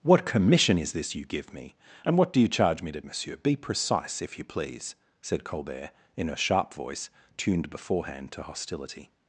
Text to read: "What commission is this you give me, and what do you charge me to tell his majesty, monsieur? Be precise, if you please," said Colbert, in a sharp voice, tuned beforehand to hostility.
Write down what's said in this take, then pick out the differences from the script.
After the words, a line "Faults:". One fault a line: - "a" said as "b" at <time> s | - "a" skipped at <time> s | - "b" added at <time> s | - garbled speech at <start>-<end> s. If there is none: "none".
"What commission is this you give me, and what do you charge me to monsieur? Be precise, if you please," said Colbert, in a sharp voice, tuned beforehand to hostility.
Faults:
- "tell his majesty" skipped at 3.0 s